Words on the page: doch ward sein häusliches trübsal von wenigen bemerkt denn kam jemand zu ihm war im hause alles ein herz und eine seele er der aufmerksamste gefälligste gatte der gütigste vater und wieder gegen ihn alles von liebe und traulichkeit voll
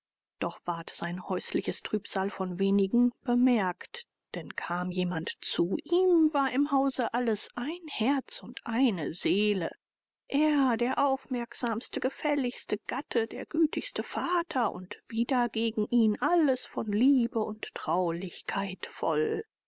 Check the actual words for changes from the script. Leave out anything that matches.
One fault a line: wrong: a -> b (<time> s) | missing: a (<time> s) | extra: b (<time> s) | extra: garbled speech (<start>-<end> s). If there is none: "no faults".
no faults